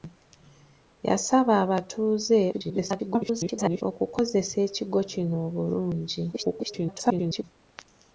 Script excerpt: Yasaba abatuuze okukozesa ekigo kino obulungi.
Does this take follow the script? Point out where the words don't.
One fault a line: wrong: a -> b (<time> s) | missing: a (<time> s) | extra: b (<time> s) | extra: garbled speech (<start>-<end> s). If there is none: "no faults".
extra: garbled speech (2.5-3.8 s)
extra: garbled speech (6.3-7.4 s)